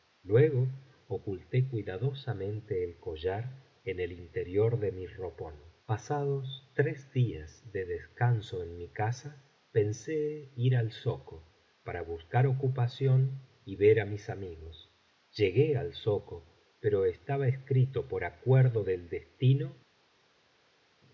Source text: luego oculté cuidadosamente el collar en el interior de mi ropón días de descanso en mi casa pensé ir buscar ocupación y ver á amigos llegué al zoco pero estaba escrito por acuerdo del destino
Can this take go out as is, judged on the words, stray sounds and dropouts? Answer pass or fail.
fail